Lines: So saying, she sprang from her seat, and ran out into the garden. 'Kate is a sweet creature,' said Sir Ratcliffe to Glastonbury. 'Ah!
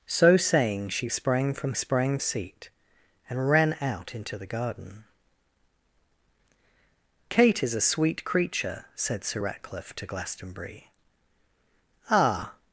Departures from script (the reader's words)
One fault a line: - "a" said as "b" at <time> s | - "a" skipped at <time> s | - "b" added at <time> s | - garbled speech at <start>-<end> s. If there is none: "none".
- "her" said as "sprang" at 1.7 s